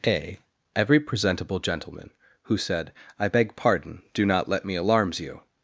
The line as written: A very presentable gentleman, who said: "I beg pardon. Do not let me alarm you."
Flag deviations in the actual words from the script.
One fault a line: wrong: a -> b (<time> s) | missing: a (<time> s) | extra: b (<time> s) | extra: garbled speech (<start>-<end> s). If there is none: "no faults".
wrong: very -> every (0.8 s)
wrong: alarm -> alarms (4.8 s)